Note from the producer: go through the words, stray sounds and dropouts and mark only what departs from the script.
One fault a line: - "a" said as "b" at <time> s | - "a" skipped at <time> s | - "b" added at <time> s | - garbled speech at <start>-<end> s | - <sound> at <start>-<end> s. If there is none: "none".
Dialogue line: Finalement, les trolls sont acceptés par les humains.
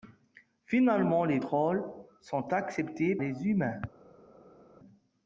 - "par" skipped at 3.2 s